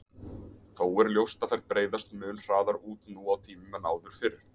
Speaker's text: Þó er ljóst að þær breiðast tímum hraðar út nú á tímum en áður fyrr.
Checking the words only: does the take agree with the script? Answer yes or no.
no